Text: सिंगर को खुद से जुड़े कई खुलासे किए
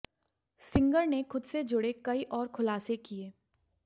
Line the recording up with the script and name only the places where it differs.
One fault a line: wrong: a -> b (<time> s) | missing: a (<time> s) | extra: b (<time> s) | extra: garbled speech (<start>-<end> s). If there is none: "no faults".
wrong: को -> ने (1.1 s)
extra: और (2.3 s)